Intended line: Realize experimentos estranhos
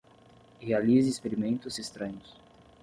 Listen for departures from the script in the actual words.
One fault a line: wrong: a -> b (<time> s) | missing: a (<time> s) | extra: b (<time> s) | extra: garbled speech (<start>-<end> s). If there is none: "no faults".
no faults